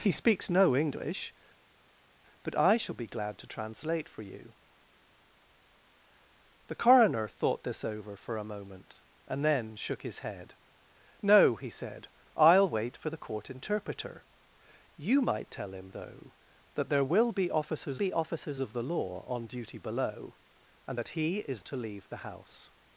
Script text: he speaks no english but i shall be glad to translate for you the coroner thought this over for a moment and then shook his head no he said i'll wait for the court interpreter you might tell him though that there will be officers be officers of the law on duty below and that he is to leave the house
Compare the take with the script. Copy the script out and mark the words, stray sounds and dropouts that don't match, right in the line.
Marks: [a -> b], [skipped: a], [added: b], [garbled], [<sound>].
he speaks no english but i shall be glad to translate for you the coroner thought this over for a moment and then shook his head no he said i'll wait for the court interpreter you might tell him though that there will be officers be officers of the law on duty below and that he is to leave the house